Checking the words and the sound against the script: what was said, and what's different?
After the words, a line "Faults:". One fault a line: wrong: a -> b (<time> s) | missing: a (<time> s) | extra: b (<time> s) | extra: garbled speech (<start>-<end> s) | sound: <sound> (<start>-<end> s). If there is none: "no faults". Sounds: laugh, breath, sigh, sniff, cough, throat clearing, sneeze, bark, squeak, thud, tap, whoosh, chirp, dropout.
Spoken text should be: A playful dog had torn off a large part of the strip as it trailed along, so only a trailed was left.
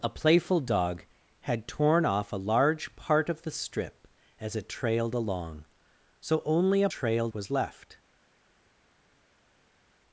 A playful dog had torn off a large part of the strip as it trailed along, so only a trailed was left.
Faults:
no faults